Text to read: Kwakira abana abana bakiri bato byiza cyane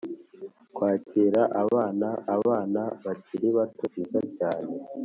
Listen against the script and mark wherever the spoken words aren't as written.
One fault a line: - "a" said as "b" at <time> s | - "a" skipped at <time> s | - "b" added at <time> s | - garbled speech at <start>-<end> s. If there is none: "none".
none